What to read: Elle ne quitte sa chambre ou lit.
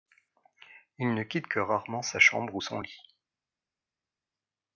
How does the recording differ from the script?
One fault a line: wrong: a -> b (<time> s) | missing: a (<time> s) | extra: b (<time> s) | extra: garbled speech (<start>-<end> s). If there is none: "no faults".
wrong: Elle -> Il (1.0 s)
extra: que rarement (1.4 s)
extra: son (2.6 s)